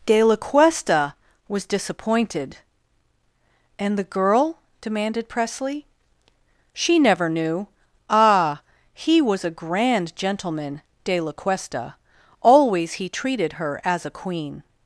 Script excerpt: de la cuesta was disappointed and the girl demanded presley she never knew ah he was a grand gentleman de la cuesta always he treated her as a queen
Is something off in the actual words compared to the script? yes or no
no